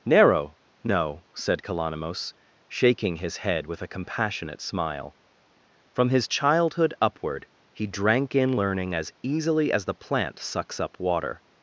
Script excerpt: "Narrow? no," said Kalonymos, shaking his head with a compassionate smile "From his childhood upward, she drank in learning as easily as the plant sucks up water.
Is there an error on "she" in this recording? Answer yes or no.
yes